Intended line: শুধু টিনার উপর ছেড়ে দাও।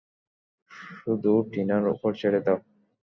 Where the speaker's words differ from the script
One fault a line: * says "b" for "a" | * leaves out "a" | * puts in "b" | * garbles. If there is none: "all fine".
all fine